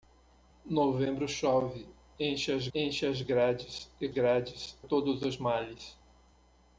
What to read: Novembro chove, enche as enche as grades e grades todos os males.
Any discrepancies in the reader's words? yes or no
no